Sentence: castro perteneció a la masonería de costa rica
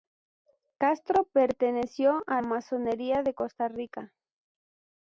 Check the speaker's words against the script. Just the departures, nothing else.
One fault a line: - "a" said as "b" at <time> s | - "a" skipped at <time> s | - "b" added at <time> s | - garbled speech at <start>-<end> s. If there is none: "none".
- "la" skipped at 2.4 s